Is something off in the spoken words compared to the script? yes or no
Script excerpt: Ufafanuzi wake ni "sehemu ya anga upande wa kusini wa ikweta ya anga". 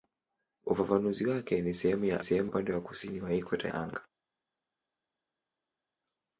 yes